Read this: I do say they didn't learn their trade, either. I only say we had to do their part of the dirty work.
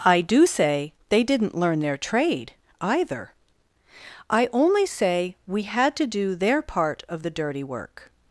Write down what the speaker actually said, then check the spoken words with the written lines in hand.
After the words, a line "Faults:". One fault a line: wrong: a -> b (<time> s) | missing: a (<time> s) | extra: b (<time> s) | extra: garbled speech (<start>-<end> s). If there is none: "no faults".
I do say they didn't learn their trade, either. I only say we had to do their part of the dirty work.
Faults:
no faults